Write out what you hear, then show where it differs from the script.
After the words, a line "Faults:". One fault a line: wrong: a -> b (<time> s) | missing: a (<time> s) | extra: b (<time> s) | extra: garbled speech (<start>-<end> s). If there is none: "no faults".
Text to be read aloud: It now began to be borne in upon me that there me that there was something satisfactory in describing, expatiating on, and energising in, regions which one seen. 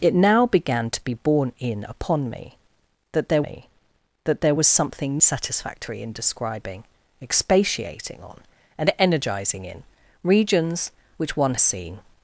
It now began to be borne in upon me that there me that there was something satisfactory in describing, expatiating on, and energising in, regions which one seen.
Faults:
no faults